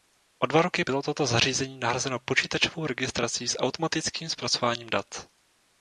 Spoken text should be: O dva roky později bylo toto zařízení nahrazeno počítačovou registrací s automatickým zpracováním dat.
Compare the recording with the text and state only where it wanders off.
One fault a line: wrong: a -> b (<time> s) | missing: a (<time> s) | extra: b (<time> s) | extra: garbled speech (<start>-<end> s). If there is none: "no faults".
missing: později (0.8 s)